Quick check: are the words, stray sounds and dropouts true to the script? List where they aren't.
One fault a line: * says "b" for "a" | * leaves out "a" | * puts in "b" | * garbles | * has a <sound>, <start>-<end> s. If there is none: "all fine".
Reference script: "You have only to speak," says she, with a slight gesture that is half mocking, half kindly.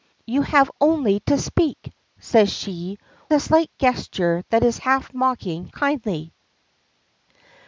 * leaves out "with"
* leaves out "half"